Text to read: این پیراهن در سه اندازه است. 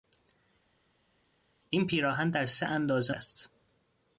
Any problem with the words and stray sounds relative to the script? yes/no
no